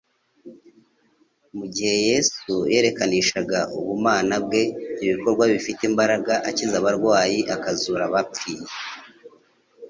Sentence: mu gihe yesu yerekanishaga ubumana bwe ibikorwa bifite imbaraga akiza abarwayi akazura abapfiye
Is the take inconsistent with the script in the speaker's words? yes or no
no